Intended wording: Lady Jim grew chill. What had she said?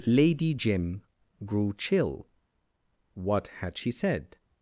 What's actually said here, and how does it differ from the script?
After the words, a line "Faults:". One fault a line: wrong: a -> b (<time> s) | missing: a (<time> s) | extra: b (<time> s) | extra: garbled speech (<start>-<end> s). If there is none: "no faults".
Lady Jim grew chill. What had she said?
Faults:
no faults